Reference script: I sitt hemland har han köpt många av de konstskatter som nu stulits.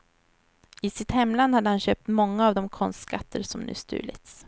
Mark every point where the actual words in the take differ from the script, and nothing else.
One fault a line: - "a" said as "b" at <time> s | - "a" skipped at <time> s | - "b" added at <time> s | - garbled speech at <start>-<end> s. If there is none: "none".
- "har" said as "hade" at 1.6 s